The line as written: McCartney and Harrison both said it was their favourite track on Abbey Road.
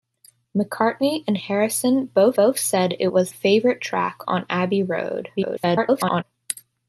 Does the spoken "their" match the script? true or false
false